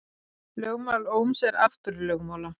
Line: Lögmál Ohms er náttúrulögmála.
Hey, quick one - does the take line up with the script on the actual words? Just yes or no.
yes